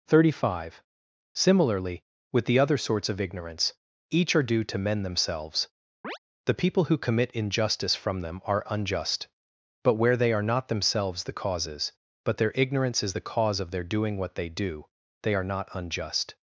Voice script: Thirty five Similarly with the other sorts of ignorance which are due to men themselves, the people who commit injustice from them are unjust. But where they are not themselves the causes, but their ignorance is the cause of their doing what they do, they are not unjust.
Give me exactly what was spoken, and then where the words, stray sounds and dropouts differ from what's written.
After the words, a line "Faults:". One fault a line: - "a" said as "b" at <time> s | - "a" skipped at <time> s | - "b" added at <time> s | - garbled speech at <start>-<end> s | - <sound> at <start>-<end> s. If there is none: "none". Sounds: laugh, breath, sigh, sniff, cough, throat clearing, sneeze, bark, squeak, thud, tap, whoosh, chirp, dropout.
Thirty five Similarly with the other sorts of ignorance each are due to men themselves, the people who commit injustice from them are unjust. But where they are not themselves the causes, but their ignorance is the cause of their doing what they do, they are not unjust.
Faults:
- "which" said as "each" at 4.1 s
- chirp at 6.0-6.2 s